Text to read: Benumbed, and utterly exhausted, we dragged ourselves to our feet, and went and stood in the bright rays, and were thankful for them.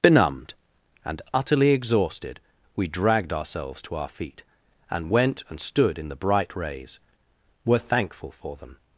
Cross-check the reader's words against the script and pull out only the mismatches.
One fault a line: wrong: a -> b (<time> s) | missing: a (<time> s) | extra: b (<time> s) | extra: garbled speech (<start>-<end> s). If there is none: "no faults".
missing: and (7.0 s)